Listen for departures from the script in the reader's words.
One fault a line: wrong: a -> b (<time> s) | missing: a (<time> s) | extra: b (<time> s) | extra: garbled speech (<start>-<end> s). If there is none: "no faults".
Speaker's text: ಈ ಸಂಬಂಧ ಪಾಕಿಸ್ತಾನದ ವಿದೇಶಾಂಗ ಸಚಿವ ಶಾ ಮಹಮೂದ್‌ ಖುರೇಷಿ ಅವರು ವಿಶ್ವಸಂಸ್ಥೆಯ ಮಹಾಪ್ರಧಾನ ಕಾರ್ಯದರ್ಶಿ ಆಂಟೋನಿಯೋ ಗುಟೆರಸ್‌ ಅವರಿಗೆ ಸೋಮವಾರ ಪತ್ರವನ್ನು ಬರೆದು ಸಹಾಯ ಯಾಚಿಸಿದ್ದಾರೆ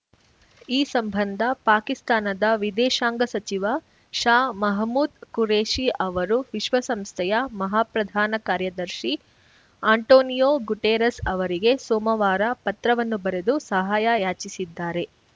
no faults